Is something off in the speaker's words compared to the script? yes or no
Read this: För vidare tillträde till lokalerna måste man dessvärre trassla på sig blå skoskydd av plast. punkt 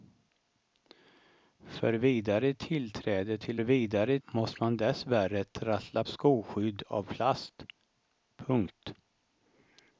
yes